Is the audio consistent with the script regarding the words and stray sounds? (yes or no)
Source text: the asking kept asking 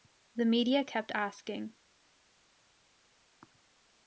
no